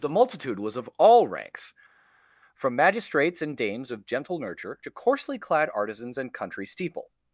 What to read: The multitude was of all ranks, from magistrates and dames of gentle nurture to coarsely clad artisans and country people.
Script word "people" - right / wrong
wrong